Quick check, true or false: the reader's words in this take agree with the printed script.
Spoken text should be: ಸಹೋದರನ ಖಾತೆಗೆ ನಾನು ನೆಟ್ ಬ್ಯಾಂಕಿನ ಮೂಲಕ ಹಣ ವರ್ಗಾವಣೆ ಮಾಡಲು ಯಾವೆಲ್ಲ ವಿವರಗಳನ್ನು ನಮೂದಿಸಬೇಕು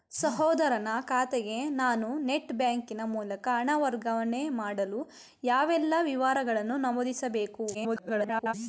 false